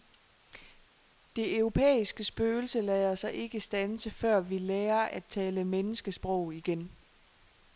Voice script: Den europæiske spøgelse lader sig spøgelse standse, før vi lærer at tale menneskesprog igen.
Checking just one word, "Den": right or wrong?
wrong